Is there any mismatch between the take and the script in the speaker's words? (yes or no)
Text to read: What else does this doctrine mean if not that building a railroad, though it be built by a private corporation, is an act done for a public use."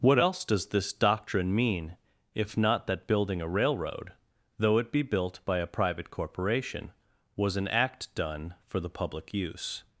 yes